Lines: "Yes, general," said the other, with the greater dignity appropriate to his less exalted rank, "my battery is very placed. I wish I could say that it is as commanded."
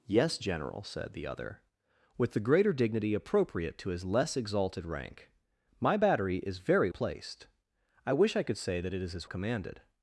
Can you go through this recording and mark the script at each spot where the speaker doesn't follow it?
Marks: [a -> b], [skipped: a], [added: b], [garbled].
"Yes, general," said the other, with the greater dignity appropriate to his less exalted rank, "my battery is very placed. I wish I could say that it is as commanded."